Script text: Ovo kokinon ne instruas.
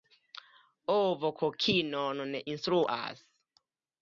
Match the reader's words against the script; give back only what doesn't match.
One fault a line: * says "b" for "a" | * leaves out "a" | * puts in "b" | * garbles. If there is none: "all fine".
all fine